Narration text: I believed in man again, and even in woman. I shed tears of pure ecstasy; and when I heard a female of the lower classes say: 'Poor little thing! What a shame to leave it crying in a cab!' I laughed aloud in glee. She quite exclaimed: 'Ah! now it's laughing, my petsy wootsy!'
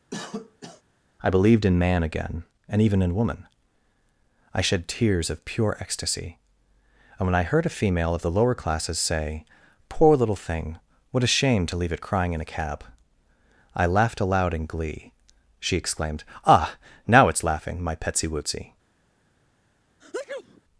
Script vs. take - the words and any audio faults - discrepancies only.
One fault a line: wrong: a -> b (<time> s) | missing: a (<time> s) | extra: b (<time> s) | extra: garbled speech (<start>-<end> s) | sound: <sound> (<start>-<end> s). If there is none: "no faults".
sound: cough (0.1-0.8 s)
missing: quite (15.8 s)
sound: sneeze (20.0-20.6 s)